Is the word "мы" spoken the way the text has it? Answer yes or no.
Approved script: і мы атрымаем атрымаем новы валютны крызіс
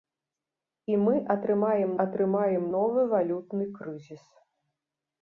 yes